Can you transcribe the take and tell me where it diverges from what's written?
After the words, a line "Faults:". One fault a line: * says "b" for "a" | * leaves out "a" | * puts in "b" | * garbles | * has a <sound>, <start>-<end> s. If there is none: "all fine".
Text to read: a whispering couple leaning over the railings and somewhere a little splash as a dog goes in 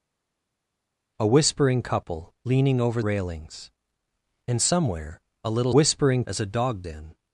a whispering couple leaning over railings and somewhere a little whispering as a dog in
Faults:
* leaves out "the"
* says "whispering" for "splash"
* leaves out "goes"